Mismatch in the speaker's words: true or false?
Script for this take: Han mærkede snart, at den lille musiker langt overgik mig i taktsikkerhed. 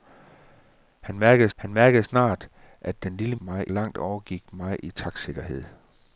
true